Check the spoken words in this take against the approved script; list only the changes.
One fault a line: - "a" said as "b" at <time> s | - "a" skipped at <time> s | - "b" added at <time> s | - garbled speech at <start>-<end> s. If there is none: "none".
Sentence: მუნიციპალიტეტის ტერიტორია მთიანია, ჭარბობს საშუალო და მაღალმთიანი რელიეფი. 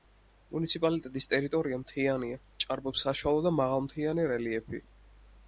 none